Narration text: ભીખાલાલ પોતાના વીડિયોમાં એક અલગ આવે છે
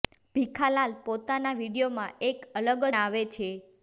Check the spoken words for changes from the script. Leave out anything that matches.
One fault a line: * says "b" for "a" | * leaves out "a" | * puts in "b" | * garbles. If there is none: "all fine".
all fine